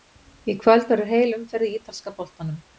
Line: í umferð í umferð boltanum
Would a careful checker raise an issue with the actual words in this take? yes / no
yes